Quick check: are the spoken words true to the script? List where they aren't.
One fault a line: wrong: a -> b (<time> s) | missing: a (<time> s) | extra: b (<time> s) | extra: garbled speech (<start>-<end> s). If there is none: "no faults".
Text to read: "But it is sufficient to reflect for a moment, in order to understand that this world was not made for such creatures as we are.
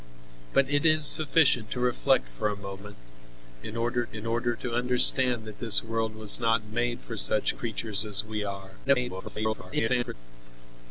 extra: in order (4.1 s)
extra: garbled speech (8.8-10.1 s)